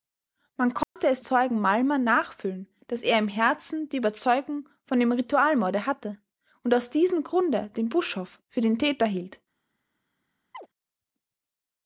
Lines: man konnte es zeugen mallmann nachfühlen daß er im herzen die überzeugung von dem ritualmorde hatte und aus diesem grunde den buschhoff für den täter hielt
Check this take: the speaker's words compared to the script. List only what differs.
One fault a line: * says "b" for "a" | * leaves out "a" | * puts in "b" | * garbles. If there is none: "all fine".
all fine